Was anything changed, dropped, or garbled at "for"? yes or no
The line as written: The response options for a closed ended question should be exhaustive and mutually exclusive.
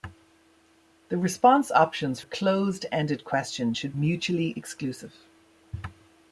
yes